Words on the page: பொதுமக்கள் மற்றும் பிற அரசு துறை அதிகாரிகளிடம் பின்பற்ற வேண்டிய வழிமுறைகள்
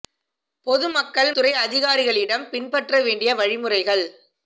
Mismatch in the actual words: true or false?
true